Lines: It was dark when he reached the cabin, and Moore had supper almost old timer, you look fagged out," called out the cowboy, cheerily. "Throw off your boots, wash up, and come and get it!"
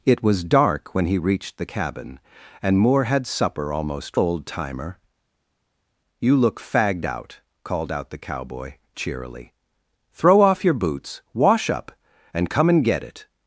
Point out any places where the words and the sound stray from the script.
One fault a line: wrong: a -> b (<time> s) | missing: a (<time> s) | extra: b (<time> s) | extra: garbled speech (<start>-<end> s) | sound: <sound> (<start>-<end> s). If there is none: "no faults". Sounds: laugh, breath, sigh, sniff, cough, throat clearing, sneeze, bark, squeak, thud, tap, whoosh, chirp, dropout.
no faults